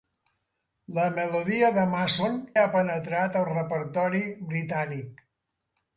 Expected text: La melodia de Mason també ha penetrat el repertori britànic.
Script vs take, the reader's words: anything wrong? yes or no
yes